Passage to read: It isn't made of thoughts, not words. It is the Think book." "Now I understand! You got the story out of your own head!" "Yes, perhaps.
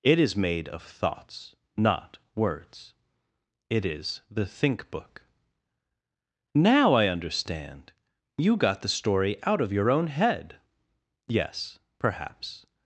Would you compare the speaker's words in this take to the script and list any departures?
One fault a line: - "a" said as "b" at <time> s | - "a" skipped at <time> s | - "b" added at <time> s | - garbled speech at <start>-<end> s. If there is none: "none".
- "isn't" said as "is" at 0.2 s